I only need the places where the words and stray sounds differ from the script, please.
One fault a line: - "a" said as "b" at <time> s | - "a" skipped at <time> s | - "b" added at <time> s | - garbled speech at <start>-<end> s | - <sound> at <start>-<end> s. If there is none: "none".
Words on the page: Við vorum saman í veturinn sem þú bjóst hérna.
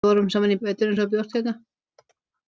none